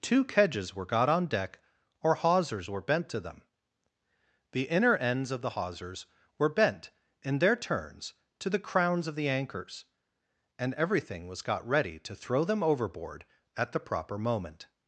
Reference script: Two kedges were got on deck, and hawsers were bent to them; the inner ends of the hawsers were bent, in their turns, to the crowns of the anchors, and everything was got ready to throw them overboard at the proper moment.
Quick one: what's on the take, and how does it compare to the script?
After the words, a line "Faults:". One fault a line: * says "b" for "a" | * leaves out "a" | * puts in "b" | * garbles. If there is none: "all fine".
Two kedges were got on deck, or hawsers were bent to them; the inner ends of the hawsers were bent, in their turns, to the crowns of the anchors, and everything was got ready to throw them overboard at the proper moment.
Faults:
* says "or" for "and"